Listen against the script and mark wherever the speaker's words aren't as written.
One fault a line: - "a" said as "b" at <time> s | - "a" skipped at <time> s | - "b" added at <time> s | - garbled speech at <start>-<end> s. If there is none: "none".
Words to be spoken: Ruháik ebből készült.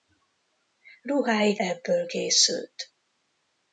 none